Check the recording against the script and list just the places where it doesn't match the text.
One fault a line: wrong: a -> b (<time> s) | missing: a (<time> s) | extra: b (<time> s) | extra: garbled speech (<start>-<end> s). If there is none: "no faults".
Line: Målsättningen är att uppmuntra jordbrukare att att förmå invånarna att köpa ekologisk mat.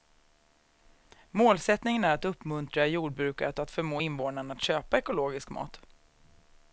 no faults